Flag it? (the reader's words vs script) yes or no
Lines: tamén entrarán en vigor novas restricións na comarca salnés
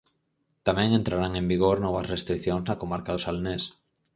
yes